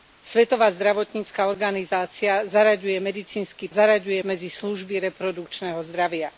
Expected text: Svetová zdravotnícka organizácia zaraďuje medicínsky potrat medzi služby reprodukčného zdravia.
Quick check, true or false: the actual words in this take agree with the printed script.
false